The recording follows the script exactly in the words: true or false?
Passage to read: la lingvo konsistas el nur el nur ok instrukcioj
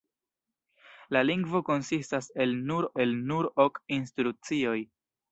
true